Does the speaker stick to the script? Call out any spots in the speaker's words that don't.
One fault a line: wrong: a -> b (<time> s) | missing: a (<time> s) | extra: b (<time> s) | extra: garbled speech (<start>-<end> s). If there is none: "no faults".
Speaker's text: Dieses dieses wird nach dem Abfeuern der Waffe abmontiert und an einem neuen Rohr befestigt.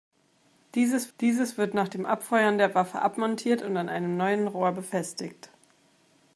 no faults